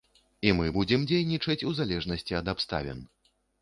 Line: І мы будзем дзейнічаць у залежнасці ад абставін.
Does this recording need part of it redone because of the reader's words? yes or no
no